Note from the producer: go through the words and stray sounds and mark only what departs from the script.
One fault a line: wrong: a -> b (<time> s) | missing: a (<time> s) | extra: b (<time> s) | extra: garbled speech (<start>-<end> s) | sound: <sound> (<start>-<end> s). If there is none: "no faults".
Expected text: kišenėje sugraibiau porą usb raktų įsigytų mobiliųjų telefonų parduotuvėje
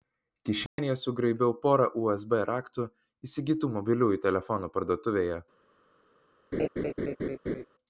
sound: dropout (0.7-0.8 s)
sound: laugh (6.5-7.7 s)